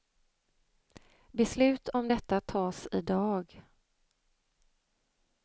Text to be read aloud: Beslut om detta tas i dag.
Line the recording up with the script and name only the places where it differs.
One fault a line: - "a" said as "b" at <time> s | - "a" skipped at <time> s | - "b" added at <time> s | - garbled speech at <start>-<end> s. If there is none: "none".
none